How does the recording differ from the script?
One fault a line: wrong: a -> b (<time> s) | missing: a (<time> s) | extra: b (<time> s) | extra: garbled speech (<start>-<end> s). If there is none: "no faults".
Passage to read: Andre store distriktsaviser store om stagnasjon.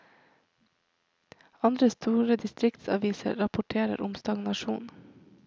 wrong: store -> rapporterer (3.3 s)